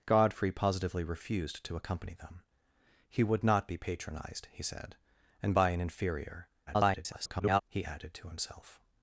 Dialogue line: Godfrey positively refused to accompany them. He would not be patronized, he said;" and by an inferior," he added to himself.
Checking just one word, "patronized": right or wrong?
right